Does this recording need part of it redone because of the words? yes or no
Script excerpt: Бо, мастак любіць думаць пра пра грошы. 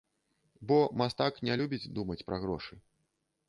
yes